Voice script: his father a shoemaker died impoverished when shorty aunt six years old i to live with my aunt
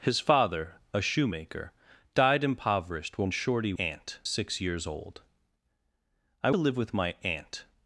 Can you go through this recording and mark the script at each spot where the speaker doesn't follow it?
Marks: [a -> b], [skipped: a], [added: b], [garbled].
his father a shoemaker died impoverished when shorty aunt six years old i to live with my aunt